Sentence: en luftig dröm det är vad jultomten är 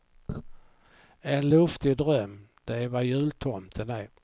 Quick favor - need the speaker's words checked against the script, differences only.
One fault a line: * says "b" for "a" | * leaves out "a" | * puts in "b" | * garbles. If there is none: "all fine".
all fine